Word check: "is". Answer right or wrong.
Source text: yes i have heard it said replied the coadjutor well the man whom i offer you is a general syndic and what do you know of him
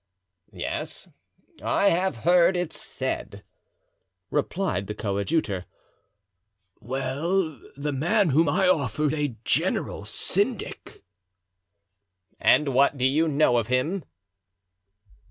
wrong